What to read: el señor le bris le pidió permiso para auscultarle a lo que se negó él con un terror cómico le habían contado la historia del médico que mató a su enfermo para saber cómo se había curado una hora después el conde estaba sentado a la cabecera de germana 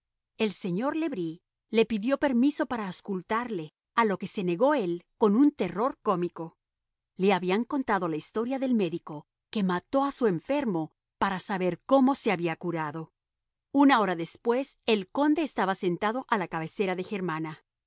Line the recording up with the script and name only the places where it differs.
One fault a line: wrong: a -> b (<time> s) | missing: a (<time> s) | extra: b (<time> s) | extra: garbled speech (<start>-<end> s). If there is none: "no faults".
no faults